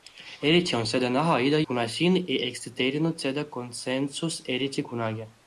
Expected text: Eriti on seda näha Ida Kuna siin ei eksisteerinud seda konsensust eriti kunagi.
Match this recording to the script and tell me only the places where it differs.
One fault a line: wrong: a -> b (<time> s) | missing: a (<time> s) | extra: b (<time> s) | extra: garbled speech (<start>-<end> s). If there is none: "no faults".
no faults